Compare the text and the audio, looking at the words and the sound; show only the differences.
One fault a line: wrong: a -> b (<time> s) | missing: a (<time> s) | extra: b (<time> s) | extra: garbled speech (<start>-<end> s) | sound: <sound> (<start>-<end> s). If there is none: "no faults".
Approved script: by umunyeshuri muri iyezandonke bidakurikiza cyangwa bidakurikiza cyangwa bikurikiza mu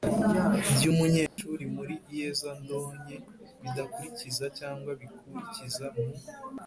sound: dropout (1.3-1.4 s)
missing: bidakurikiza cyangwa (4.9 s)